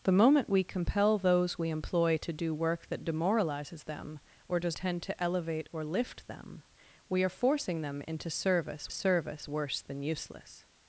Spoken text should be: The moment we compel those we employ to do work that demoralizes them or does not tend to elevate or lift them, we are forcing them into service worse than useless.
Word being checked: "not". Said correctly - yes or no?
no